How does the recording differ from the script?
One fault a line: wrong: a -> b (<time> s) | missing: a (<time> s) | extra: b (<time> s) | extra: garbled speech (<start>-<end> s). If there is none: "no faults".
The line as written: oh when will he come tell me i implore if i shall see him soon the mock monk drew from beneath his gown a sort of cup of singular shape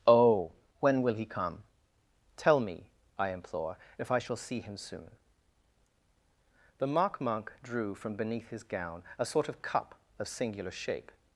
no faults